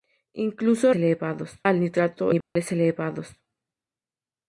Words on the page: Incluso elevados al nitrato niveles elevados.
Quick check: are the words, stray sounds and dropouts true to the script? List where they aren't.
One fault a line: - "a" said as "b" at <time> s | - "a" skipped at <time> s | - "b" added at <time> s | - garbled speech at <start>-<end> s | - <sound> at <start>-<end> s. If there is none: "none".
- dropout at 2.4-2.6 s